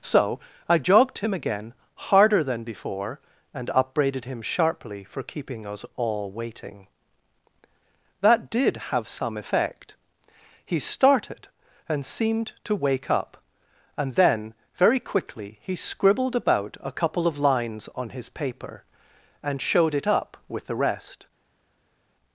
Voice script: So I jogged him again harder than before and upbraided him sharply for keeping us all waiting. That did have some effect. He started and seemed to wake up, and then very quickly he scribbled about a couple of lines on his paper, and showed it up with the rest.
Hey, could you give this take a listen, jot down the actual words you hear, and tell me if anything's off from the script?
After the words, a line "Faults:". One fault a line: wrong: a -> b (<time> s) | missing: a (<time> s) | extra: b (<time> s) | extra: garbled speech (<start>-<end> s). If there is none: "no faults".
So I jogged him again harder than before and upbraided him sharply for keeping us all waiting. That did have some effect. He started and seemed to wake up, and then very quickly he scribbled about a couple of lines on his paper, and showed it up with the rest.
Faults:
no faults